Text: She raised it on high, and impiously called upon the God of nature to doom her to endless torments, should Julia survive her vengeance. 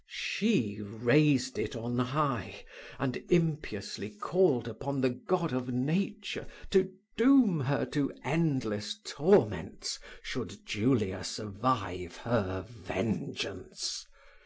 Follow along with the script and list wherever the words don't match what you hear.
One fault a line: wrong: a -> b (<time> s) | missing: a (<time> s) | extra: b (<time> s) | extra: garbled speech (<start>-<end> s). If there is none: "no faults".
no faults